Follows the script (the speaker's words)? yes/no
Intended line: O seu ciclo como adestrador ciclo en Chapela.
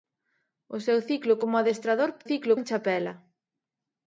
yes